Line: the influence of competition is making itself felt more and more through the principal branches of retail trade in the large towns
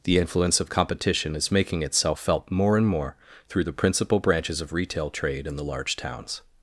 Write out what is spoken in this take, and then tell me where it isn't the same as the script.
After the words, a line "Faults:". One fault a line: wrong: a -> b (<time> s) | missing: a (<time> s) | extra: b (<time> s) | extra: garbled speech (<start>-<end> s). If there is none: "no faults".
the influence of competition is making itself felt more and more through the principal branches of retail trade in the large towns
Faults:
no faults